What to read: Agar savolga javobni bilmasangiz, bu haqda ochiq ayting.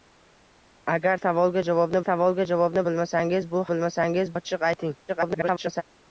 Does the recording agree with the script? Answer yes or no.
no